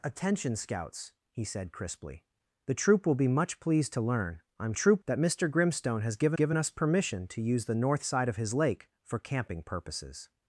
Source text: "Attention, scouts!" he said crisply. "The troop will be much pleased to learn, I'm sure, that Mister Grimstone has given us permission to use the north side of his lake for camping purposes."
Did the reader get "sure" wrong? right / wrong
wrong